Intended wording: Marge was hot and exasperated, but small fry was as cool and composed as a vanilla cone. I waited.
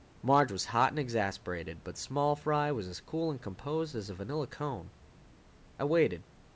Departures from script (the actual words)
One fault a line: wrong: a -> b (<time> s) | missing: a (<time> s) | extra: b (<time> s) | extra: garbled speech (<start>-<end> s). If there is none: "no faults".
no faults